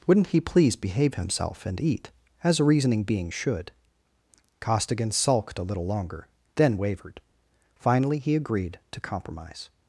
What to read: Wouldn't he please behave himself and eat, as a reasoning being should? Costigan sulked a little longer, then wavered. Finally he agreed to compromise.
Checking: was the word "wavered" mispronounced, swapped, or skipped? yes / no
no